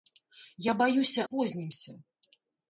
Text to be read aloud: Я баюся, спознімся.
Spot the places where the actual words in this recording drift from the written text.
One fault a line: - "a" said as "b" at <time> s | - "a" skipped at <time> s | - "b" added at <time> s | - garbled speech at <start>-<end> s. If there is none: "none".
none